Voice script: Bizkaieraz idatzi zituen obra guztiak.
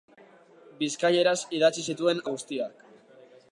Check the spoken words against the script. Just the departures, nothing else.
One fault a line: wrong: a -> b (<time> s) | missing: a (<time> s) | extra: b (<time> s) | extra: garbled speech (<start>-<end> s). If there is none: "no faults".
missing: obra (2.2 s)